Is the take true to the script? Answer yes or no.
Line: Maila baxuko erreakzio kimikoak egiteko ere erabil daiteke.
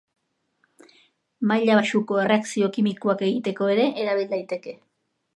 yes